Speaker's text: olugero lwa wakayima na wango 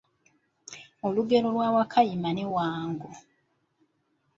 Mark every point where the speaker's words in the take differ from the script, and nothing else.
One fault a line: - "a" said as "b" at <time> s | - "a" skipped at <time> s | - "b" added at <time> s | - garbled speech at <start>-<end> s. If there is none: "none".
- "na" said as "ne" at 2.3 s